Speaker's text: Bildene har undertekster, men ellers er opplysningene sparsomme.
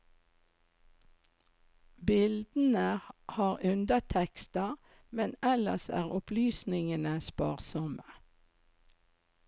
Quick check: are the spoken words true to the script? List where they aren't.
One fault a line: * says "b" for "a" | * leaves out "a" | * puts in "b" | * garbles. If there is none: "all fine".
all fine